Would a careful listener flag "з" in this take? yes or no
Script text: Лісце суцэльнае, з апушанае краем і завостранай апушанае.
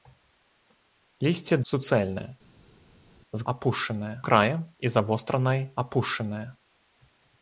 no